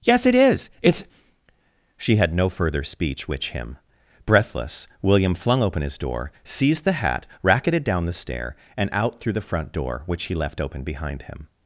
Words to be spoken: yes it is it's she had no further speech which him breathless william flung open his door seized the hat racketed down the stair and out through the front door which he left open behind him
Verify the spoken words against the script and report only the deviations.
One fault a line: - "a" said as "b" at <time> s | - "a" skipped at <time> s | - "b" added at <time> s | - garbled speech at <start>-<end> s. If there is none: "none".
none